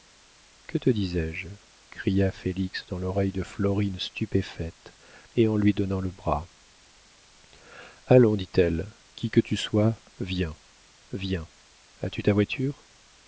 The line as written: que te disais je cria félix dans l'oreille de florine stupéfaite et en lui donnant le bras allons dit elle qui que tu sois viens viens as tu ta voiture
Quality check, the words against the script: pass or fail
pass